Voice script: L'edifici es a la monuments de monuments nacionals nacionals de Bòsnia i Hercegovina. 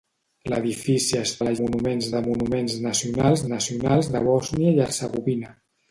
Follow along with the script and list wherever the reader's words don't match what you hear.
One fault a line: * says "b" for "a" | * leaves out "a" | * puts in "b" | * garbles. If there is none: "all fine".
all fine